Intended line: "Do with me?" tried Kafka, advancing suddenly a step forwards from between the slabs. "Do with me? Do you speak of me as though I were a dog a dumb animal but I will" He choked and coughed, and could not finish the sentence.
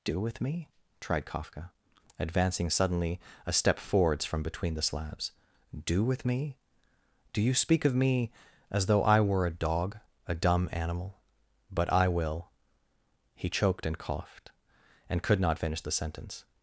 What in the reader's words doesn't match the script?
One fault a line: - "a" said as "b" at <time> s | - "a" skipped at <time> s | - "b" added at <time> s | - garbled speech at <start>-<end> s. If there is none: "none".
none